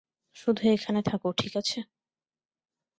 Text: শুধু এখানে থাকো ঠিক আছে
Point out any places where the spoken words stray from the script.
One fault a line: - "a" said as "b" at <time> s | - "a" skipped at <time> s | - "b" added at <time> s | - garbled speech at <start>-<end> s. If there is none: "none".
none